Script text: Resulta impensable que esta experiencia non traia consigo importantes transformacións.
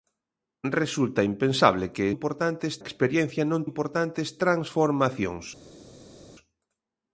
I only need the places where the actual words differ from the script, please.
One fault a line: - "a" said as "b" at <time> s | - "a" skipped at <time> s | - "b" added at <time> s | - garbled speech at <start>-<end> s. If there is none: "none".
- "esta" said as "importantes" at 2.2 s
- "traia consigo" skipped at 3.6 s